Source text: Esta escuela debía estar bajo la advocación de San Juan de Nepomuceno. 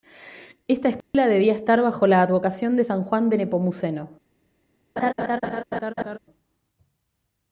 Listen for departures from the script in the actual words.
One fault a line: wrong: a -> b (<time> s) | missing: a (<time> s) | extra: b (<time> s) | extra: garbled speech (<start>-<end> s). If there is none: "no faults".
no faults